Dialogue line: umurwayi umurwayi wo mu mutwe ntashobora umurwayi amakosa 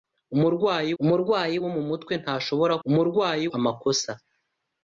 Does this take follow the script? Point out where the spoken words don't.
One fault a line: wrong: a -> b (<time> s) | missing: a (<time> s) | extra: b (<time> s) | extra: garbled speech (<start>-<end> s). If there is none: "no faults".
no faults